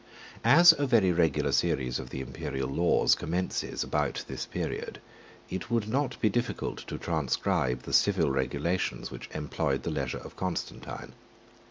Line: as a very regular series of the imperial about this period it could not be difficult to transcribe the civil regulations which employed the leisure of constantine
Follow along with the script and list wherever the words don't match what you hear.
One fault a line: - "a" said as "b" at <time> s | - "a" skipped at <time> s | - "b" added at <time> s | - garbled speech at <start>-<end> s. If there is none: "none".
- "laws commences" added at 2.7 s
- "could" said as "would" at 5.7 s